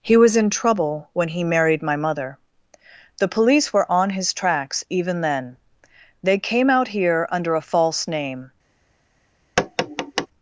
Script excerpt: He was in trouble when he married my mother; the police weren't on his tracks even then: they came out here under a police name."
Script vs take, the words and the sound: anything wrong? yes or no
yes